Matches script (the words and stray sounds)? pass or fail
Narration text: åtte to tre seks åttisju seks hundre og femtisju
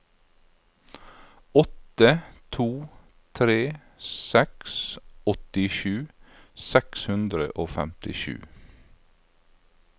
pass